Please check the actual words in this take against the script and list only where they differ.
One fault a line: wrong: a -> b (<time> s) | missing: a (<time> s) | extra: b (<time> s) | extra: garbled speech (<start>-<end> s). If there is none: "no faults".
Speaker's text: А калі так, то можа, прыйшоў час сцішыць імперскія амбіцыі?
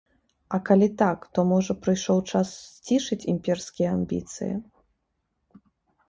no faults